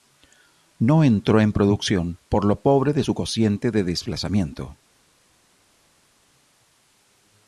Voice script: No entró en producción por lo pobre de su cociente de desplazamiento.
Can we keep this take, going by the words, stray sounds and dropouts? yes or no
yes